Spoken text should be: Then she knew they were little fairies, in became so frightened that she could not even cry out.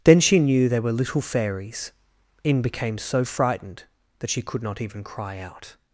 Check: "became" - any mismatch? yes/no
no